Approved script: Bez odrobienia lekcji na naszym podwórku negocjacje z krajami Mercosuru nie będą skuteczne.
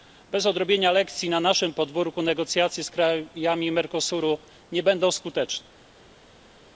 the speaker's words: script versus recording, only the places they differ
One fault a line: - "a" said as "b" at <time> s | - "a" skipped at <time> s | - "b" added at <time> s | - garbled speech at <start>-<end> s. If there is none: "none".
none